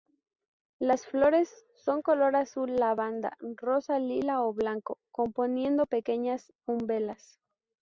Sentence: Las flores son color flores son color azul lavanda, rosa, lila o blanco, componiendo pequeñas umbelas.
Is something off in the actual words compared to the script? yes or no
yes